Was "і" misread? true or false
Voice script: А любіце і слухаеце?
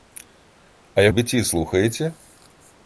false